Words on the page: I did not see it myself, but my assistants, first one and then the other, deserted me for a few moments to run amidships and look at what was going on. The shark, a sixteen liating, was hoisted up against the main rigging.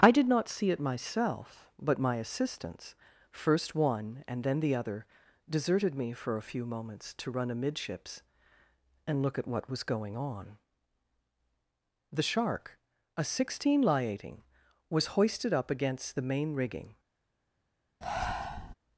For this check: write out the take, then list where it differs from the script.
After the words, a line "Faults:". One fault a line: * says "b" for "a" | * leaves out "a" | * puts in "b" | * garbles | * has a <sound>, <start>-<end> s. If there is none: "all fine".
I did not see it myself, but my assistants, first one and then the other, deserted me for a few moments to run amidships and look at what was going on. The shark, a sixteen liating, was hoisted up against the main rigging.
Faults:
* has a breath, 18.0-18.7 s